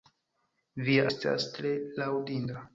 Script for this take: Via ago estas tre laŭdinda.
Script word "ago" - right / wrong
wrong